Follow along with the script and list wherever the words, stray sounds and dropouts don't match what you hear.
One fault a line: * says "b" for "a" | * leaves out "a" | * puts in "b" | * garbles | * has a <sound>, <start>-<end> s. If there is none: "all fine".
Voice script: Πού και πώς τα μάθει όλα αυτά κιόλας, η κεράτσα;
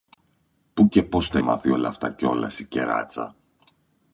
all fine